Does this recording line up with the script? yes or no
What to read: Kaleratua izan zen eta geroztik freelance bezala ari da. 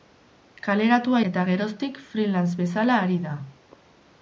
no